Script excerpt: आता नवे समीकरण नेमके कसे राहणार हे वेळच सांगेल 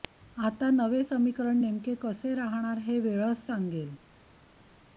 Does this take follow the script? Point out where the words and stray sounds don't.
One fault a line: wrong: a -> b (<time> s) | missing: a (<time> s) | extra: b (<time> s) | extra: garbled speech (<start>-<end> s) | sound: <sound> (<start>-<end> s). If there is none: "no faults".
no faults